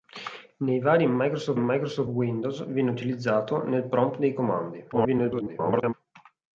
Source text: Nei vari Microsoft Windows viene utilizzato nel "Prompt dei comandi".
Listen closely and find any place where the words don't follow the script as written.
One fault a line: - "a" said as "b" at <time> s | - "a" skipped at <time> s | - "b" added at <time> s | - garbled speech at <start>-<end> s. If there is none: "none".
- "Microsoft" added at 1.6 s
- garbled speech at 4.9-5.9 s